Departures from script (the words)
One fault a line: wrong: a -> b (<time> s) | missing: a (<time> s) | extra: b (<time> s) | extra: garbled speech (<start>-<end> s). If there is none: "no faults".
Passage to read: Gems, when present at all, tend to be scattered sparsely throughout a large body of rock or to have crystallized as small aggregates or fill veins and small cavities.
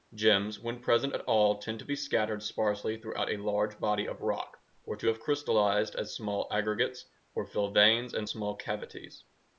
no faults